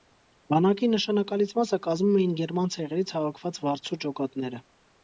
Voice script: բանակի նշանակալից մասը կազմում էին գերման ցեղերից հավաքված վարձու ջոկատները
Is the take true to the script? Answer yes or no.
yes